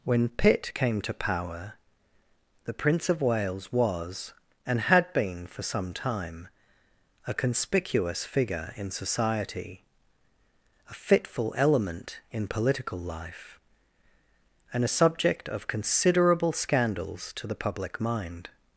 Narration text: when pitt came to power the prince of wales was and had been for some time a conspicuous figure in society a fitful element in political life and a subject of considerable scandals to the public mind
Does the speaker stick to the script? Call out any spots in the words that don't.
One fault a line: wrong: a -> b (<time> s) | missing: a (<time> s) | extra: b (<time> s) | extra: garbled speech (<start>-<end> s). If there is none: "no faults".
no faults